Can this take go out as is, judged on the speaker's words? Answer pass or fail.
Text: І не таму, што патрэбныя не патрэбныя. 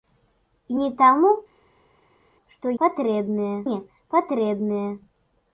pass